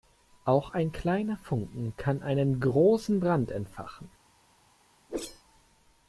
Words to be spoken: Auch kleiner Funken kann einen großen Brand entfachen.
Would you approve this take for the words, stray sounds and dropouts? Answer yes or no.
no